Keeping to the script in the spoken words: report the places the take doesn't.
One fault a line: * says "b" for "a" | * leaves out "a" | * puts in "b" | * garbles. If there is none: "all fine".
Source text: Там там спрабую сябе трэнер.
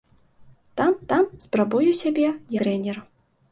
all fine